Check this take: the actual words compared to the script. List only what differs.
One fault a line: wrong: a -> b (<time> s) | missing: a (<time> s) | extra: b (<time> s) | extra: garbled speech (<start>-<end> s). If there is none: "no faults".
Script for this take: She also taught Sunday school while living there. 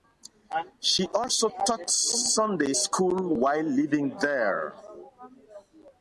no faults